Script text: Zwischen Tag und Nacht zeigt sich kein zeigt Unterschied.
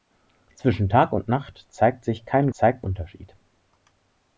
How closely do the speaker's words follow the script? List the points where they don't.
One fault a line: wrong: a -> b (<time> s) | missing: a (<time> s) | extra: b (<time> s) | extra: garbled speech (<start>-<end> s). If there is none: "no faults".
no faults